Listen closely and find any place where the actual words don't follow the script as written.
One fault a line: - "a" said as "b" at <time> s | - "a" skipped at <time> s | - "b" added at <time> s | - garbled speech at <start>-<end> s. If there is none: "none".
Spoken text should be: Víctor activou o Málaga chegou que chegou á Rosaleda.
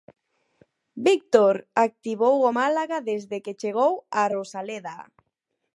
- "chegou" said as "desde" at 3.1 s